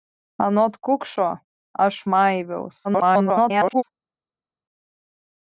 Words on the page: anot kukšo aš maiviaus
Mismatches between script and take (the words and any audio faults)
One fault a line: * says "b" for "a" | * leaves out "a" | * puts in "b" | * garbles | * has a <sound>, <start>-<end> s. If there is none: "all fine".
* garbles